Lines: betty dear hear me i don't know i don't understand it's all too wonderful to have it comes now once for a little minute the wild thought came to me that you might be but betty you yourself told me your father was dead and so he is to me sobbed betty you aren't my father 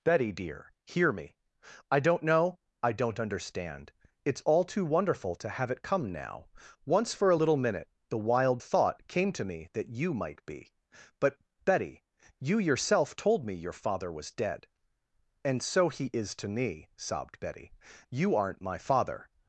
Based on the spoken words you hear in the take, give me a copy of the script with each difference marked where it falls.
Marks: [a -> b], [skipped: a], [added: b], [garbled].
betty dear hear me i don't know i don't understand it's all too wonderful to have it [comes -> come] now once for a little minute the wild thought came to me that you might be but betty you yourself told me your father was dead and so he is to me sobbed betty you aren't my father